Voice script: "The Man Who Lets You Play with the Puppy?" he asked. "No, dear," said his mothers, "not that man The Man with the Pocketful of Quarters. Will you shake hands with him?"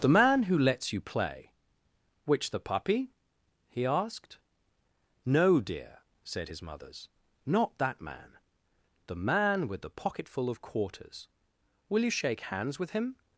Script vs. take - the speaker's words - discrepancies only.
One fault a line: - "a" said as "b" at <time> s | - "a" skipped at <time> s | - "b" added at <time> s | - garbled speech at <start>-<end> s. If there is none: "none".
- "with" said as "which" at 2.2 s